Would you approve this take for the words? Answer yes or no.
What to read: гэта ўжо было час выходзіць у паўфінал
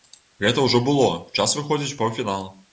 yes